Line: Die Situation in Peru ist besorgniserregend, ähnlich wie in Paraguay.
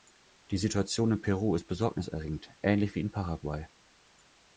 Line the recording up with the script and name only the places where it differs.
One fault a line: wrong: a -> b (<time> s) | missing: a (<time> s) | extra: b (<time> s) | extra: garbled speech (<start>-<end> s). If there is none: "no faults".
no faults